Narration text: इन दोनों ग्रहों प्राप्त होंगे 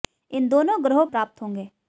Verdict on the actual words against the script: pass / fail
pass